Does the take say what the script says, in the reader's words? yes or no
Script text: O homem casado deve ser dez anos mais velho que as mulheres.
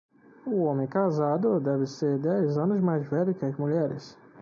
yes